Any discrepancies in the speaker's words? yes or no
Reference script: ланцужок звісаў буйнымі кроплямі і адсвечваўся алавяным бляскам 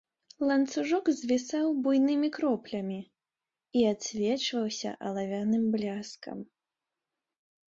no